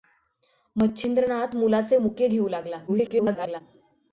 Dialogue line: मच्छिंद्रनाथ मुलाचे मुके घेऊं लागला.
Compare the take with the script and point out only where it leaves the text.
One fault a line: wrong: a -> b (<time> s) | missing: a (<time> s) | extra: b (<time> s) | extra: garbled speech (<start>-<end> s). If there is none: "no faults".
extra: garbled speech (2.9-3.6 s)